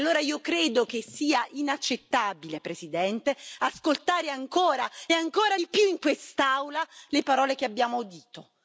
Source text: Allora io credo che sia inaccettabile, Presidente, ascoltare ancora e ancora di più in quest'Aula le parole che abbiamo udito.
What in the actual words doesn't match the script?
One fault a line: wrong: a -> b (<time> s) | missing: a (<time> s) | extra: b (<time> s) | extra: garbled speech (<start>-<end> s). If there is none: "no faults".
no faults